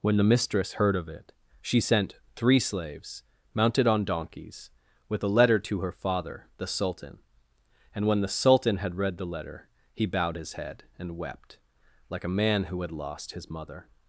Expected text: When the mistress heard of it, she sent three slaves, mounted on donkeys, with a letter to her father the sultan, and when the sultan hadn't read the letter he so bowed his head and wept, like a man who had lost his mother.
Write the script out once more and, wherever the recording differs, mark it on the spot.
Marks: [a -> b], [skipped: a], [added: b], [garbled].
When the mistress heard of it, she sent three slaves, mounted on donkeys, with a letter to her father the sultan, and when the sultan [hadn't -> had] read the letter he [skipped: so] bowed his head and wept, like a man who had lost his mother.